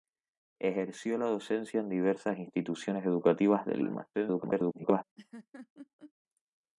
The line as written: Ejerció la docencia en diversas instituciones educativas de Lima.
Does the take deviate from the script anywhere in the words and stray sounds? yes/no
yes